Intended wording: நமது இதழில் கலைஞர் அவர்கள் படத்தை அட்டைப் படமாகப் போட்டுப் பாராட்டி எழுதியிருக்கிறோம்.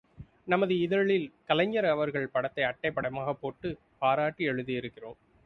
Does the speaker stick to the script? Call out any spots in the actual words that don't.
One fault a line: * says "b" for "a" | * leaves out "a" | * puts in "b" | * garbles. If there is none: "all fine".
all fine